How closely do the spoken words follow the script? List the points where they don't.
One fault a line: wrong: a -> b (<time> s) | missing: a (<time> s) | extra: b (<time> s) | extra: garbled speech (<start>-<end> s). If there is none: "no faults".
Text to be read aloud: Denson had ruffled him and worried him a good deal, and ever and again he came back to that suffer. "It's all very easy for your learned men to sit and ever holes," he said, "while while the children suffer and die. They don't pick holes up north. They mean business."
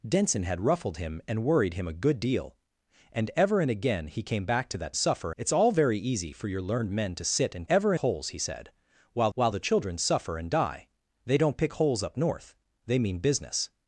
no faults